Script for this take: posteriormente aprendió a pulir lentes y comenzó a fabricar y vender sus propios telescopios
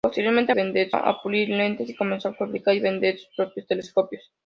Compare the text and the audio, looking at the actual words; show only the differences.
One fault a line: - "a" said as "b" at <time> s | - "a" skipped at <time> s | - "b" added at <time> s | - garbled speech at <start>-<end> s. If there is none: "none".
- "aprendió" said as "vender" at 0.5 s